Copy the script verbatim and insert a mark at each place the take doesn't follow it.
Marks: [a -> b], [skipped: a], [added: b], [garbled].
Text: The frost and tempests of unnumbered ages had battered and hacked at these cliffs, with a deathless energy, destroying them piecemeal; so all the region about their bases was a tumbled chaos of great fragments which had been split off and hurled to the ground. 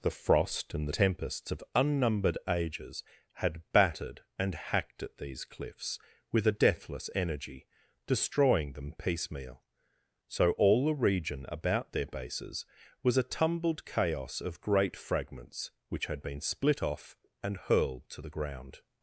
The frost and tempests of unnumbered ages had battered and hacked at these cliffs, with a deathless energy, destroying them piecemeal; so all the region about their bases was a tumbled chaos of great fragments which had been split off and hurled to the ground.